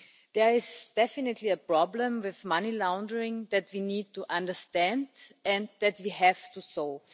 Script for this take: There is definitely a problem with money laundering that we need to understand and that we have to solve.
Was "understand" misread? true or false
false